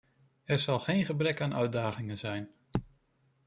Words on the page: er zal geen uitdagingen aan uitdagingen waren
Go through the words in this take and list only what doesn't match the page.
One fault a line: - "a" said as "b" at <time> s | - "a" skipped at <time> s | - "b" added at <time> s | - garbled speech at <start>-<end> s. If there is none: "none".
- "uitdagingen" said as "gebrek" at 1.0 s
- "waren" said as "zijn" at 2.2 s